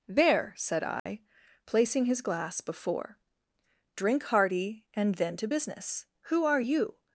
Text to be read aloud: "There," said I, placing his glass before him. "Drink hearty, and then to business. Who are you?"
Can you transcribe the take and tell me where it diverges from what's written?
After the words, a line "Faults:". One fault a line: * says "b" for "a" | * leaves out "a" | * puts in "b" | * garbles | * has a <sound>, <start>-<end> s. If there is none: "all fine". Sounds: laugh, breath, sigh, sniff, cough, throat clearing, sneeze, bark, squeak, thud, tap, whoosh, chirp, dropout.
"There," said I, placing his glass before. "Drink hearty, and then to business. Who are you?"
Faults:
* has a dropout, 1.0-1.1 s
* leaves out "him"